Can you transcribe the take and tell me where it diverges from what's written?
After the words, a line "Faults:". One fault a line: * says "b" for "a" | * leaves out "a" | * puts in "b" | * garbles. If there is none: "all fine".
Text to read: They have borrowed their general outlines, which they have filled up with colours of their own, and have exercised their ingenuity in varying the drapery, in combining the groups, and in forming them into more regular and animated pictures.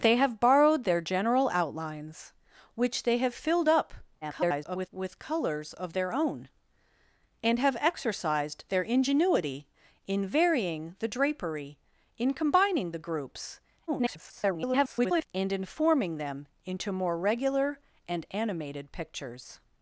They have borrowed their general outlines, which they have filled up [garbled] with colours of their own, and have exercised their ingenuity in varying the drapery, in combining the groups, [garbled] and in forming them into more regular and animated pictures.
Faults:
* garbles
* garbles